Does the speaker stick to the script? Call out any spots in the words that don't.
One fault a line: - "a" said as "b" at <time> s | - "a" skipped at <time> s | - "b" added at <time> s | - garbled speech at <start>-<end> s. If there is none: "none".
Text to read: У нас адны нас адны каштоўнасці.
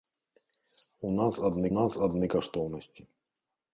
none